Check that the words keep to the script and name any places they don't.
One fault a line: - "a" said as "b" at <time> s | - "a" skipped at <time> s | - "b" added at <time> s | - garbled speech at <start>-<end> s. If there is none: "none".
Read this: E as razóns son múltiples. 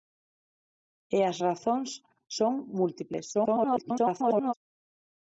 - garbled speech at 3.3-4.5 s